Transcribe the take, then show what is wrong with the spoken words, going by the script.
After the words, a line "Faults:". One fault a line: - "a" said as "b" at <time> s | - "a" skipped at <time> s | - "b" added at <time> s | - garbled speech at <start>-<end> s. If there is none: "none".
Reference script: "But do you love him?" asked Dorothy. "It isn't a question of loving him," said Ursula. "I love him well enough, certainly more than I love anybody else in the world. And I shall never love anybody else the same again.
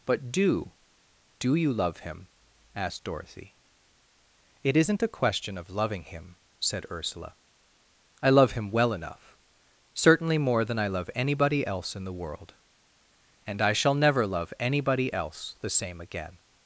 "But do do you love him?" asked Dorothy. "It isn't a question of loving him," said Ursula. "I love him well enough, certainly more than I love anybody else in the world. And I shall never love anybody else the same again.
Faults:
- "do" added at 1.4 s